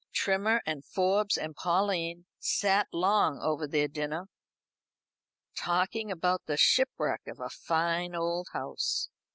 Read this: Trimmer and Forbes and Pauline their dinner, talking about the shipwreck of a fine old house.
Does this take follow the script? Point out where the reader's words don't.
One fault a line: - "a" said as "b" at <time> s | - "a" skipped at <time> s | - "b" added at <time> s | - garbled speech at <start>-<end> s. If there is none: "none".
- "sat long over" added at 2.4 s